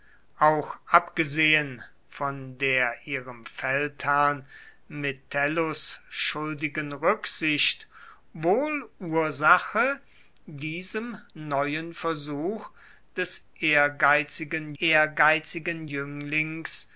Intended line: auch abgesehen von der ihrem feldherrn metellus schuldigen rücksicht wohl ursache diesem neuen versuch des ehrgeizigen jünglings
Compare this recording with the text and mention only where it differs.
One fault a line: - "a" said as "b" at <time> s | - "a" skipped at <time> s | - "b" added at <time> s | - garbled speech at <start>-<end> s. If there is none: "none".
- "ehrgeizigen" added at 14.8 s